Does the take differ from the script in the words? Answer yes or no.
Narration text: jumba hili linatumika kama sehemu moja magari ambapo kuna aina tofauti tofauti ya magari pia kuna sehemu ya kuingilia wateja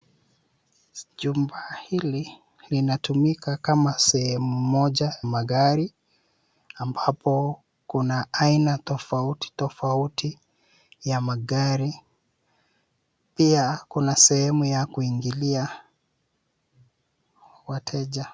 no